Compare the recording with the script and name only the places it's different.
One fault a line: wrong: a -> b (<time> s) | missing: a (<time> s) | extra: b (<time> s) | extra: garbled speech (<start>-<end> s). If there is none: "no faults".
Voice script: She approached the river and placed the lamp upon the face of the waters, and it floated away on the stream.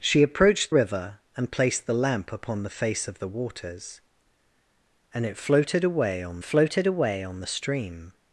missing: the (0.7 s)
extra: floated away on (6.4 s)